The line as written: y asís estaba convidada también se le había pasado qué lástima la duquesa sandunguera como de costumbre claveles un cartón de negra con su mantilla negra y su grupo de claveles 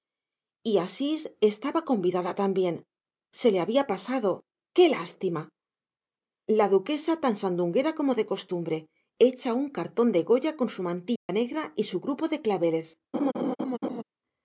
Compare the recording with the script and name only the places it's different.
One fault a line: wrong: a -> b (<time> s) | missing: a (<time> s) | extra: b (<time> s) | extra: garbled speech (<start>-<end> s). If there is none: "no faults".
extra: tan (7.2 s)
wrong: claveles -> hecha (9.2 s)
wrong: negra -> goya (10.2 s)